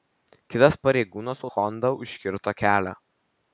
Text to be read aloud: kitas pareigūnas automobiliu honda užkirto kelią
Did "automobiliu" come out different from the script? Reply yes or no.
yes